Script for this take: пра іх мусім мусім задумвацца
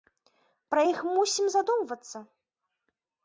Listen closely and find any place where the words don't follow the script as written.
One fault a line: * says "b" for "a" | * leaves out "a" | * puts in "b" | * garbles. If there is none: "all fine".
* leaves out "мусім"